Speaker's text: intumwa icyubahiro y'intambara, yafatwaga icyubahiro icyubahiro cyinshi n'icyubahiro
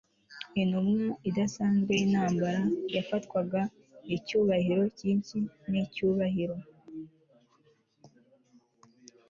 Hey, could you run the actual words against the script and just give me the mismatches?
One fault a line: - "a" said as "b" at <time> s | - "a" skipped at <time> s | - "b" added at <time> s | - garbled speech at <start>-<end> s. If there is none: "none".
- "icyubahiro" said as "idasanzwe" at 1.3 s
- "icyubahiro" skipped at 4.8 s